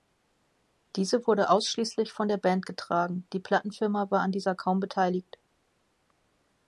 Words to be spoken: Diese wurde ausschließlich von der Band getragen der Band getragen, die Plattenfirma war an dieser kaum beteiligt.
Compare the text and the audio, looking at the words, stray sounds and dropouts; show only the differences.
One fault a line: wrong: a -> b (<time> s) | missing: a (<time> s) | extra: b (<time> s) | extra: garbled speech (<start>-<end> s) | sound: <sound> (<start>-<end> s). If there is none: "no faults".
missing: der Band getragen (3.3 s)